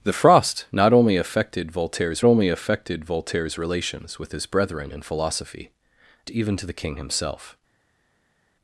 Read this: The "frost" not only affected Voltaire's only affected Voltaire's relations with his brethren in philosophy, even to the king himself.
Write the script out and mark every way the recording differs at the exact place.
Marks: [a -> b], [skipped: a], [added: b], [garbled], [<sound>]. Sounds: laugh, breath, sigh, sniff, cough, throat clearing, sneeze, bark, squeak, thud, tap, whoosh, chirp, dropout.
The "frost" not only affected Voltaire's only affected Voltaire's relations with his brethren in philosophy, even to the king himself.